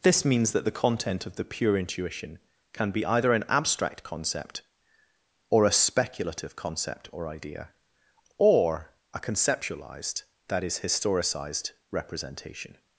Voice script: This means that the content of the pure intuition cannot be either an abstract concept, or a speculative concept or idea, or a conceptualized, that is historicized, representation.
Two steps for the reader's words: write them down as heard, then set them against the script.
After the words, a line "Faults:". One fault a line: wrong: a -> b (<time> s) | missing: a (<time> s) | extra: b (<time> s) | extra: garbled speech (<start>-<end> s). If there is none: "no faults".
This means that the content of the pure intuition can be either an abstract concept, or a speculative concept or idea, or a conceptualized, that is historicized, representation.
Faults:
wrong: cannot -> can (2.7 s)